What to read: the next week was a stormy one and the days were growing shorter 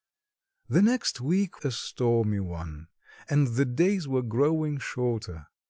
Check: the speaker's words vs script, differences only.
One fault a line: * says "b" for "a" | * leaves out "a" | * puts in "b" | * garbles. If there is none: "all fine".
* leaves out "was"